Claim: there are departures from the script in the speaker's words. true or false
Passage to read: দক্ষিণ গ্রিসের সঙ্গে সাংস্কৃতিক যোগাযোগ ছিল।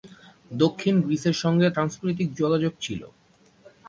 false